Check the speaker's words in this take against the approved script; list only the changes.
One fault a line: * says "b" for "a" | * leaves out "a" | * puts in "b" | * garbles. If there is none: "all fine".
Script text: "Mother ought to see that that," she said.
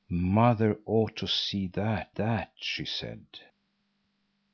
all fine